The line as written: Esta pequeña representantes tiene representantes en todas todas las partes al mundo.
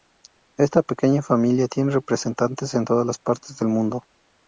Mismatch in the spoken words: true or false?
true